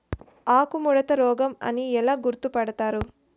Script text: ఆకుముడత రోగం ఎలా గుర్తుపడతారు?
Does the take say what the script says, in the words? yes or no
no